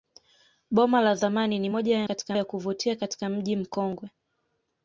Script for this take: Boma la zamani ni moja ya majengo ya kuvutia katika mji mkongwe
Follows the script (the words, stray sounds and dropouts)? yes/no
no